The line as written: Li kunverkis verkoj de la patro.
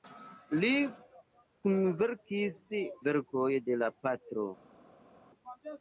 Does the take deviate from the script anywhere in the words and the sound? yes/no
no